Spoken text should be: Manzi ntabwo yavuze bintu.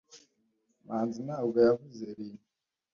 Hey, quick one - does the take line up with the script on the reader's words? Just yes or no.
yes